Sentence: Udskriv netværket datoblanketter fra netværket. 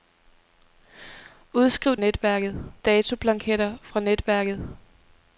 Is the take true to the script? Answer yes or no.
yes